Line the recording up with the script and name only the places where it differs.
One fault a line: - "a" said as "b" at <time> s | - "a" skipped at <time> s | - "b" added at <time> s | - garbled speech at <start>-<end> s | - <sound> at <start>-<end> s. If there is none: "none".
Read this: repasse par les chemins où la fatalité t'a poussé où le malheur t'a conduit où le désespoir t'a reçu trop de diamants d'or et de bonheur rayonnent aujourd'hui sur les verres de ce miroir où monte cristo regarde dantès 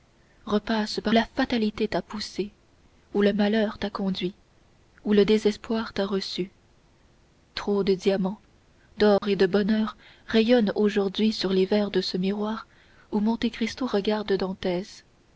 - "les chemins où" skipped at 1.1 s
- dropout at 9.2-9.2 s